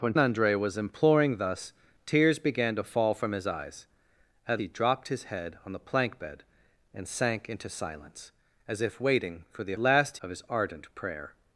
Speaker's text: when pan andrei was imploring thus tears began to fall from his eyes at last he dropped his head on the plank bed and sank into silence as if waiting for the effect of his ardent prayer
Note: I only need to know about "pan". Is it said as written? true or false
false